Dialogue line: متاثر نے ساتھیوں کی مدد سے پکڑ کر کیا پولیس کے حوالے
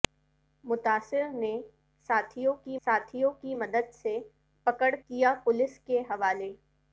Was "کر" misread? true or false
true